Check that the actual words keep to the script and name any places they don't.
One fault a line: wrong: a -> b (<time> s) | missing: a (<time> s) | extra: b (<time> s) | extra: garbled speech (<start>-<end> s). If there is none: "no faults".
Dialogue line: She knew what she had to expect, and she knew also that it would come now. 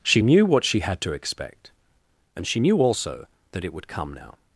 no faults